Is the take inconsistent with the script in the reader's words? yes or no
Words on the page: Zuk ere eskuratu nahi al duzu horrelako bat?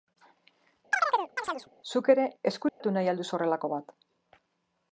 no